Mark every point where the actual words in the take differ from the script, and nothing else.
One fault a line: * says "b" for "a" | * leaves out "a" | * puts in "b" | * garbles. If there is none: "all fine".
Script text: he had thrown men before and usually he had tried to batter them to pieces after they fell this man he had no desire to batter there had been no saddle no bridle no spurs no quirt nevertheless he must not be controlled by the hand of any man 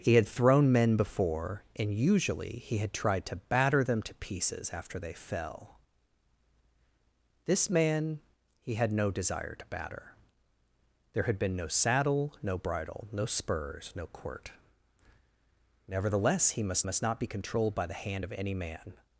* puts in "must"